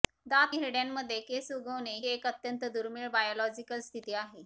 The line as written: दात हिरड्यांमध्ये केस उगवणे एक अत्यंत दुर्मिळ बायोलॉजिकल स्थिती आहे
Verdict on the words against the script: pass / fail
pass